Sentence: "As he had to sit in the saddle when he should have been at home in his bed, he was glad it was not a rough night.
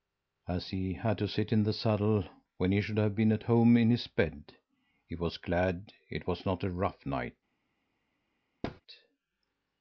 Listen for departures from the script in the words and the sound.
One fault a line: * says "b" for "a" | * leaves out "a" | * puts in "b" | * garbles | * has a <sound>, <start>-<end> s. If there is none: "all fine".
* has a thud, 8.6-8.8 s